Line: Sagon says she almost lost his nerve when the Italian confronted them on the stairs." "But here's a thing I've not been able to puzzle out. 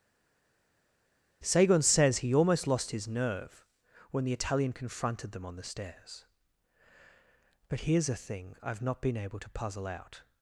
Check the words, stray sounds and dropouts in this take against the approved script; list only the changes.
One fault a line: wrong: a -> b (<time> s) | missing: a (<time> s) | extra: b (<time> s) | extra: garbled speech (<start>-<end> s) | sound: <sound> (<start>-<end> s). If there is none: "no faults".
wrong: she -> he (2.2 s)